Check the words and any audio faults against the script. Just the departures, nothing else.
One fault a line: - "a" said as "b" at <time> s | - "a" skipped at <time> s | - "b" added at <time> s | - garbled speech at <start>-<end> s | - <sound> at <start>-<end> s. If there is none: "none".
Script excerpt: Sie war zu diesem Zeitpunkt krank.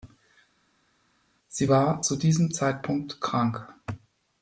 none